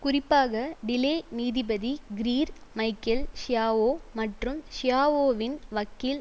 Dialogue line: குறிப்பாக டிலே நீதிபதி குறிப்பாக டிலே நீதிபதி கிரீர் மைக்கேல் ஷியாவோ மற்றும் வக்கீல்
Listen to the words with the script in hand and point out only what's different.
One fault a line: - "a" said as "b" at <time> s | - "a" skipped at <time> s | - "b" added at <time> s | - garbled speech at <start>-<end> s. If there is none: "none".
- "குறிப்பாக டிலே நீதிபதி" skipped at 1.9 s
- "ஷியாவோவின்" added at 4.7 s